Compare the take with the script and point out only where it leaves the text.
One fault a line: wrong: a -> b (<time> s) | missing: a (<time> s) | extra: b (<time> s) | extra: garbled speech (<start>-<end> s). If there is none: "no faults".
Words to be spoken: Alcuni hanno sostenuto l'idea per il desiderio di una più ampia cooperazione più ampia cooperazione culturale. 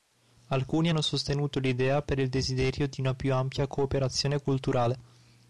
missing: più ampia cooperazione (4.4 s)